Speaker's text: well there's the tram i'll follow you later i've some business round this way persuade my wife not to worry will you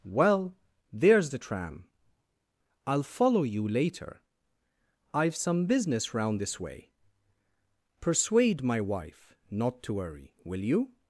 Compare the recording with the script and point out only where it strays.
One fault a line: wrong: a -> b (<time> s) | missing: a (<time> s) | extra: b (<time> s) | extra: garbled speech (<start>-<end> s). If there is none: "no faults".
no faults